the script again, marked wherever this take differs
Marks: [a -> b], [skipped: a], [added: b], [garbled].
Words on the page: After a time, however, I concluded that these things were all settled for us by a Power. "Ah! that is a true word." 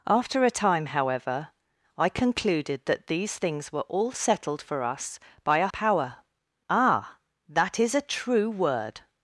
After a time, however, I concluded that these things were all settled for us by a Power. "Ah! that is a true word."